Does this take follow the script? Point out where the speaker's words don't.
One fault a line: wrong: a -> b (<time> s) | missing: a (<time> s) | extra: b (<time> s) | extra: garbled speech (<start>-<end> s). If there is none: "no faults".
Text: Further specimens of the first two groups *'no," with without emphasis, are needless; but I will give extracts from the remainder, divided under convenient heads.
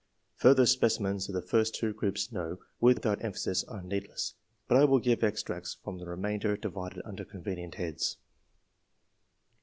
no faults